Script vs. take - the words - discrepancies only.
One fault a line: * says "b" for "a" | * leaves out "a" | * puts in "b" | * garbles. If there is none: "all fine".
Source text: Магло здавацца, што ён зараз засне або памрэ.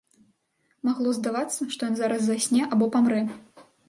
all fine